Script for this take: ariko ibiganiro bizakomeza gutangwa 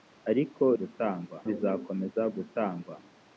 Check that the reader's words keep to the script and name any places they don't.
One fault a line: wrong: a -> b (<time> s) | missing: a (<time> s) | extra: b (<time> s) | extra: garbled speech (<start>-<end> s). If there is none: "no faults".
wrong: ibiganiro -> gutangwa (0.8 s)